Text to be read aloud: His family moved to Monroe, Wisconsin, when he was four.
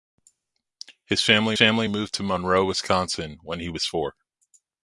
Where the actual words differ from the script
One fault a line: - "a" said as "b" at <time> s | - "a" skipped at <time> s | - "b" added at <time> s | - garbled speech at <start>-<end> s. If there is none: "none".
- "family" added at 1.5 s